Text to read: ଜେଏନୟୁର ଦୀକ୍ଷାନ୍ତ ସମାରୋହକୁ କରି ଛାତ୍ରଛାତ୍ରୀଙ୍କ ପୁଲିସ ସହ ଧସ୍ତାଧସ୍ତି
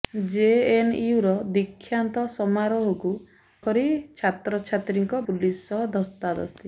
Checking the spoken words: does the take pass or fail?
pass